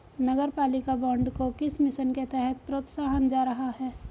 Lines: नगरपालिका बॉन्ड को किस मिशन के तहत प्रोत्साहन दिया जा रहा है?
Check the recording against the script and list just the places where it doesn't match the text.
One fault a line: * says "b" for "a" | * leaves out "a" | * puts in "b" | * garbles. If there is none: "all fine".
* leaves out "दिया"